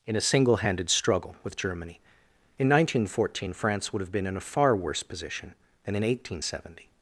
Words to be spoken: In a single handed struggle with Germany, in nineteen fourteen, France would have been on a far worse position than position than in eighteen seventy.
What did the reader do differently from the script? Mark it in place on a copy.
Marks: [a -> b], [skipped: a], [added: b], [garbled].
In a single handed struggle with Germany, in nineteen fourteen, France would have been [on -> in] a far worse position than [skipped: position than] in eighteen seventy.